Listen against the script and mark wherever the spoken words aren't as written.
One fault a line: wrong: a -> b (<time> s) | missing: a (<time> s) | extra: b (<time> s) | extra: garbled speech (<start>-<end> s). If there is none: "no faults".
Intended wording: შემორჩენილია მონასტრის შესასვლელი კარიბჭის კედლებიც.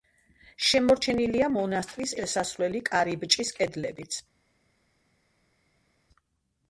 no faults